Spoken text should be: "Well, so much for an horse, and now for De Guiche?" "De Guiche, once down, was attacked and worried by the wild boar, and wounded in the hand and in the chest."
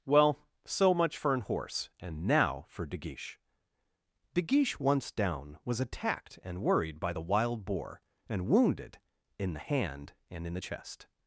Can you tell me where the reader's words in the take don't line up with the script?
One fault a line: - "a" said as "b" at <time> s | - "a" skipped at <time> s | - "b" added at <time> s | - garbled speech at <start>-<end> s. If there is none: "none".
none